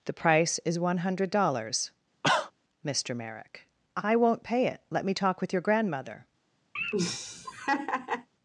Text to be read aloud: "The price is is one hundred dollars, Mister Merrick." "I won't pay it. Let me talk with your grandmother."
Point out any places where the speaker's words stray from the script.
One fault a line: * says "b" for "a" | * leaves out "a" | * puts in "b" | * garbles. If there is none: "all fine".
* leaves out "is"